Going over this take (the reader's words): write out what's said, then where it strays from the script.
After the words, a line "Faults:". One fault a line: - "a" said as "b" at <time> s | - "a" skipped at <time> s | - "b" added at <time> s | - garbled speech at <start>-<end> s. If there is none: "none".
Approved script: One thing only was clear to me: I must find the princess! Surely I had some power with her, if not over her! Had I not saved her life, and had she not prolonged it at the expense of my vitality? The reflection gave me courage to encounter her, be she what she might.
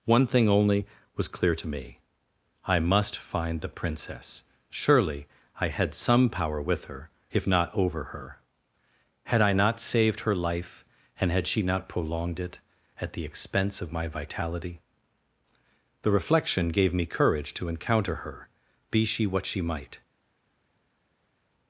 One thing only was clear to me: I must find the princess! Surely I had some power with her, if not over her! Had I not saved her life, and had she not prolonged it at the expense of my vitality? The reflection gave me courage to encounter her, be she what she might.
Faults:
none